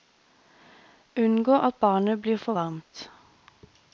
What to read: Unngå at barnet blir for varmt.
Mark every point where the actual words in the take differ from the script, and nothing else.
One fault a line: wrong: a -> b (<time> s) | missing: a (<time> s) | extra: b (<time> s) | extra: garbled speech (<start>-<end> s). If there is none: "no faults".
no faults